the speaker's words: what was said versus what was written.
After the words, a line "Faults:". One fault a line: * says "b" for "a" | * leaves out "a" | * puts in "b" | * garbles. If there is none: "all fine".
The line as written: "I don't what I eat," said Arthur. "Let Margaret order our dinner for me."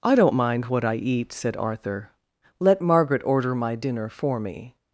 "I don't mind what I eat," said Arthur. "Let Margaret order my dinner for me."
Faults:
* puts in "mind"
* says "my" for "our"